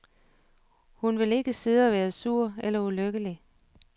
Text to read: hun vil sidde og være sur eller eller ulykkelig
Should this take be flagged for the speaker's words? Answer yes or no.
yes